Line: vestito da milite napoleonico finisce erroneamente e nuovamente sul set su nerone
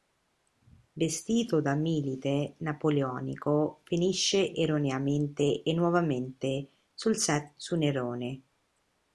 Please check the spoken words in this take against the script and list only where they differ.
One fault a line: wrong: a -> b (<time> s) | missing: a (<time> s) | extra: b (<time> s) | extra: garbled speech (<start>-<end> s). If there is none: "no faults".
no faults